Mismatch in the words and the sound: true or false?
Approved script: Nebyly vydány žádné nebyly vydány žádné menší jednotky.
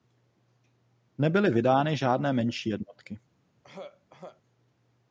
true